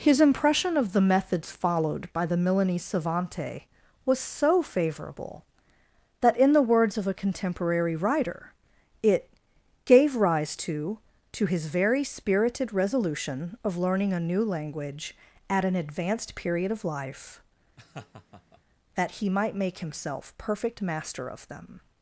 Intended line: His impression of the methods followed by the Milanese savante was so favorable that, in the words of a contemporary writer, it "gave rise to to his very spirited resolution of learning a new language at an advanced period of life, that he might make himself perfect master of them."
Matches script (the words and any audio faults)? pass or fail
fail